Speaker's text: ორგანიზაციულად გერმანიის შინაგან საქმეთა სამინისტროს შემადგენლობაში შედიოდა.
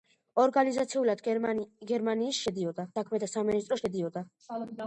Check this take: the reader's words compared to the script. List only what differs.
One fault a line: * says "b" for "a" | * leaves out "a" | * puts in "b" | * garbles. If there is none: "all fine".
* says "შედიოდა" for "შინაგან"
* leaves out "შემადგენლობაში"